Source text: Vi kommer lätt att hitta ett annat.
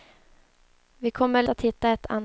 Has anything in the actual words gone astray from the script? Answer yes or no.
yes